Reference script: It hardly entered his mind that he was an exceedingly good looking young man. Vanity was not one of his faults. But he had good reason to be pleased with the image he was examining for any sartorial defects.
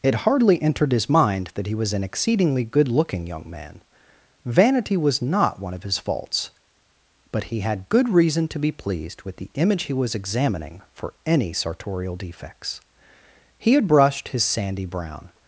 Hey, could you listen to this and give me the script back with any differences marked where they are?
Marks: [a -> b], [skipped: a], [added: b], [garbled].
It hardly entered his mind that he was an exceedingly good looking young man. Vanity was not one of his faults. But he had good reason to be pleased with the image he was examining for any sartorial defects. [added: He had brushed his sandy brown]